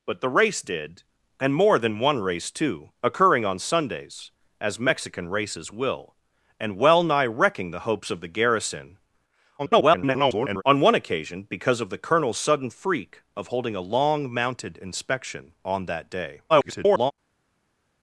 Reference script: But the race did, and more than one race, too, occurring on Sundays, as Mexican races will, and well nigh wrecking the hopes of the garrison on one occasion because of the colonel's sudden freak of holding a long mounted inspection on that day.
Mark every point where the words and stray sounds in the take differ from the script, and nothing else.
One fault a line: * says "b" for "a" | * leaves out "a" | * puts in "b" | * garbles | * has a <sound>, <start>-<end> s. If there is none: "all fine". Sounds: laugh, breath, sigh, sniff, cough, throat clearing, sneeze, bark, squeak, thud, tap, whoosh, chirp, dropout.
* garbles
* garbles